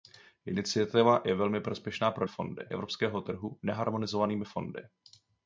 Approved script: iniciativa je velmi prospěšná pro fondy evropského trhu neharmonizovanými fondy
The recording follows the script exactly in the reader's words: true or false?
true